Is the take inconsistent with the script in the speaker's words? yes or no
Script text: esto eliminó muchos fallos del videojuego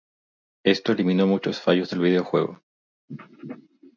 no